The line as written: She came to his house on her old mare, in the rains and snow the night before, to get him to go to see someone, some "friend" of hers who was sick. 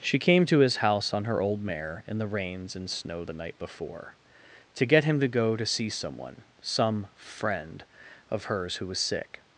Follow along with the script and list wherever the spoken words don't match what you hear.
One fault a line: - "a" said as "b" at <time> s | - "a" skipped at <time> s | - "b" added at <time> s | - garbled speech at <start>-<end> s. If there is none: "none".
none